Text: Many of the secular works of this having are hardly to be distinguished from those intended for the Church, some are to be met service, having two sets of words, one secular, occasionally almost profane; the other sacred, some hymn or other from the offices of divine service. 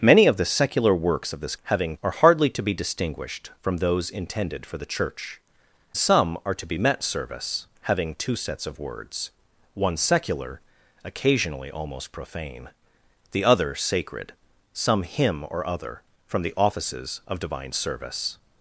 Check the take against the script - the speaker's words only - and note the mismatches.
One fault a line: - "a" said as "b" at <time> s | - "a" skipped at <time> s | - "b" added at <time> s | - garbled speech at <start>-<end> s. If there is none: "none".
none